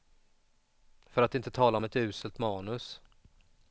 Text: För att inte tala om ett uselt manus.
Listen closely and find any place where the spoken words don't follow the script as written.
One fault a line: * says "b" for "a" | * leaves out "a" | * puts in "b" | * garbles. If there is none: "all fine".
all fine